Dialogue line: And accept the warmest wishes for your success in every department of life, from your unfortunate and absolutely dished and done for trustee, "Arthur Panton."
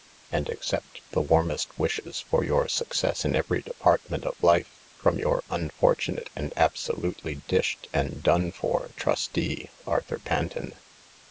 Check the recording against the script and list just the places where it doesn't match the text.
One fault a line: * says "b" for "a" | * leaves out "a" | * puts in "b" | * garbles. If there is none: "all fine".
all fine